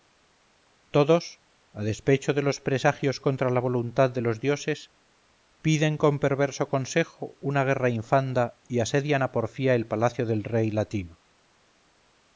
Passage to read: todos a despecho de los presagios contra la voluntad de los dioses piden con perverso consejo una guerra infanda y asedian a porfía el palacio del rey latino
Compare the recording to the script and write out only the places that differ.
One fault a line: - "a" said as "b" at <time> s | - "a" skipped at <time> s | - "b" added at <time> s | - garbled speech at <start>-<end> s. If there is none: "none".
none